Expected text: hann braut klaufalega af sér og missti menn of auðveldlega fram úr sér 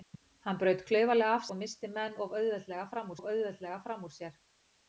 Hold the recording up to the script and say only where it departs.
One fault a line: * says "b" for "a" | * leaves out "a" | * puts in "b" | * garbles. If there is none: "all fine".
* leaves out "sér"
* puts in "of auðveldlega fram"